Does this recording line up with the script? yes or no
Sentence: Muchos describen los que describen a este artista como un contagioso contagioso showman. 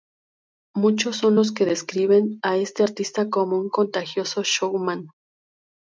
no